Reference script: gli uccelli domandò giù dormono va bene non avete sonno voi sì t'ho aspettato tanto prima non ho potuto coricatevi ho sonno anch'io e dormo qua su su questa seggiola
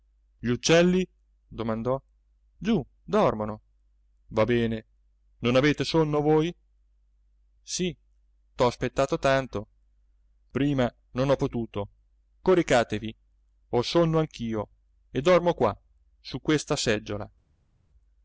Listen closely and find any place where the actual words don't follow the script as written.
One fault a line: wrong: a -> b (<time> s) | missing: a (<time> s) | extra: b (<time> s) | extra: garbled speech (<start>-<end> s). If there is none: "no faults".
missing: su (16.4 s)